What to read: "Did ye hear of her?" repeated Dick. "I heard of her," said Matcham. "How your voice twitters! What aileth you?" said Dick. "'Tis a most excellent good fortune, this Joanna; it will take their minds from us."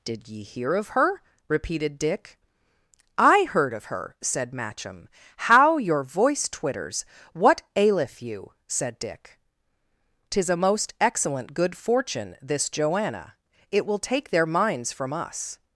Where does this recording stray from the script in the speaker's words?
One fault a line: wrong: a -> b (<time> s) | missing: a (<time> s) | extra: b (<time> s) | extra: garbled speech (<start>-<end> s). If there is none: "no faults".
no faults